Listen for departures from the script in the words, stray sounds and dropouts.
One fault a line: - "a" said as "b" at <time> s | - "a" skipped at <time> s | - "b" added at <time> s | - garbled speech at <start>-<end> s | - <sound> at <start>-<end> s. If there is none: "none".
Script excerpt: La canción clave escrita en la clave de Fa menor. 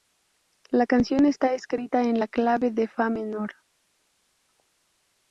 - "clave" said as "está" at 1.2 s